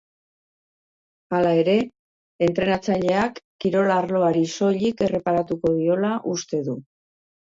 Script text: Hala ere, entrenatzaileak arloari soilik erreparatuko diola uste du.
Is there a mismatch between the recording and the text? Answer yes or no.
yes